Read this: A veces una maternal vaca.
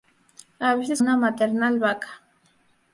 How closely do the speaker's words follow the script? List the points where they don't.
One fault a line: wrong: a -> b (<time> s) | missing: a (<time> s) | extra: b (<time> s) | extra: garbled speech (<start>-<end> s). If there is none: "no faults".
no faults